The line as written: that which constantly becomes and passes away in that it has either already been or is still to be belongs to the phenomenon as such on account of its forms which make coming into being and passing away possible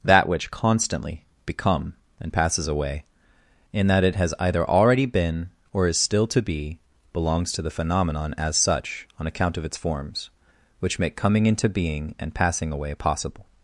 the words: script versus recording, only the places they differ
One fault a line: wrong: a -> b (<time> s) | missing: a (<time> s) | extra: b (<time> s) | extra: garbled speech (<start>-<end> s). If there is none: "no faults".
wrong: becomes -> become (1.4 s)